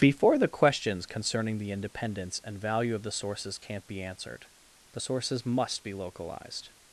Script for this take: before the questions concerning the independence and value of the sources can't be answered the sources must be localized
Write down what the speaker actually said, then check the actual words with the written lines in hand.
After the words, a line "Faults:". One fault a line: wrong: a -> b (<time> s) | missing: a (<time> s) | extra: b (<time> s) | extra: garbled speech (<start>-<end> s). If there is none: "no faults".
before the questions concerning the independence and value of the sources can't be answered the sources must be localized
Faults:
no faults